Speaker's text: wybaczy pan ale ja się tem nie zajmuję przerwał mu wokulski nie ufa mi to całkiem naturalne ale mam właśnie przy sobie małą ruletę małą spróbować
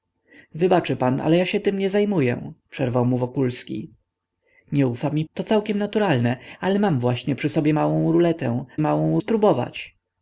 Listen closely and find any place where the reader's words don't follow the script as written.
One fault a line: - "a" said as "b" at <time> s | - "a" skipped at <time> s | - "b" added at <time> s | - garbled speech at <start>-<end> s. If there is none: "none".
none